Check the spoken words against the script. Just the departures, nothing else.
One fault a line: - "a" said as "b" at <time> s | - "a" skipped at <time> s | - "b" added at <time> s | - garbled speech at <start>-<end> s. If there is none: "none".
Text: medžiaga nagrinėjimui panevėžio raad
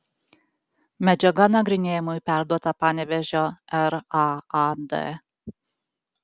- "perduota" added at 2.3 s